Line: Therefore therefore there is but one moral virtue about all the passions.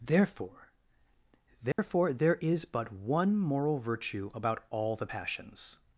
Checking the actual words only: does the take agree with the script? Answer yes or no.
yes